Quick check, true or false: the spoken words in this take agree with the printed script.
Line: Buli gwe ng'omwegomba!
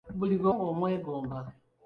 true